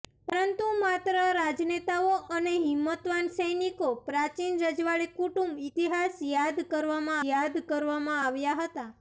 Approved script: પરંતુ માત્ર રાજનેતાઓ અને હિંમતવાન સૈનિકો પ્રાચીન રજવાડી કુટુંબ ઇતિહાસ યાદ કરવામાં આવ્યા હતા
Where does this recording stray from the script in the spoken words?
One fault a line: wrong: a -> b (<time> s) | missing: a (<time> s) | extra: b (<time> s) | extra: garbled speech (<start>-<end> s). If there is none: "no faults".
extra: યાદ કરવામાં (7.3 s)